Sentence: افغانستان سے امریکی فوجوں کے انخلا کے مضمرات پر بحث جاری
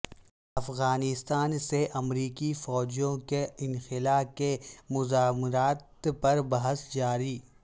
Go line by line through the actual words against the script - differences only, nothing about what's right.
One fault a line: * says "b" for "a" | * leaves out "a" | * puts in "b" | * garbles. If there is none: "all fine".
all fine